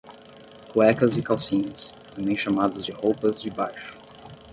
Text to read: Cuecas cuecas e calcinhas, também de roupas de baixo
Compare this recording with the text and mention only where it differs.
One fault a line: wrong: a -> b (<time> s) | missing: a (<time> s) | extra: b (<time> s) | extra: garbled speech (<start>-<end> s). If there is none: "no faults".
missing: cuecas (1.1 s)
extra: chamados (2.4 s)